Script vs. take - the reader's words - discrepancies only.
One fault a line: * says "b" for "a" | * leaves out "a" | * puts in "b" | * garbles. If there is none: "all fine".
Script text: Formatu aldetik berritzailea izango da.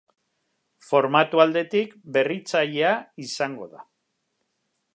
all fine